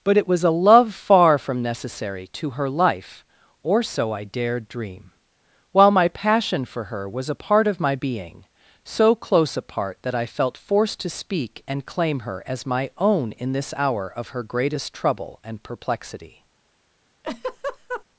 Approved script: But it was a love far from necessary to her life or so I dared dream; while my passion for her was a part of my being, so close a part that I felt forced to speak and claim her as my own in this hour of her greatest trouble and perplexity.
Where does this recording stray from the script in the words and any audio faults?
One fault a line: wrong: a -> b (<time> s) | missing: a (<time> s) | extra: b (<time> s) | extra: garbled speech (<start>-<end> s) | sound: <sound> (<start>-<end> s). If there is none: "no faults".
sound: laugh (17.2-18.0 s)